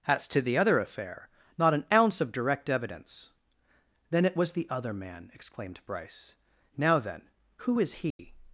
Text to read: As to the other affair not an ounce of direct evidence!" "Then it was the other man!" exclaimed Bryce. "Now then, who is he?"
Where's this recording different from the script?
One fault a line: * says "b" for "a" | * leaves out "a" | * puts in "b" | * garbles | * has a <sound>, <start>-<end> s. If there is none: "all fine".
* has a dropout, 8.1-8.2 s